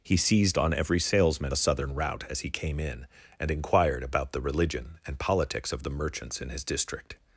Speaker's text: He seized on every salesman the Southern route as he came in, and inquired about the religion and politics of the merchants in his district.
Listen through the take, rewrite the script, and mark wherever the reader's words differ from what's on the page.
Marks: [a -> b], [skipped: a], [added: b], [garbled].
He seized on every salesman the Southern route as he came in, and inquired about the religion and politics of the merchants in his district.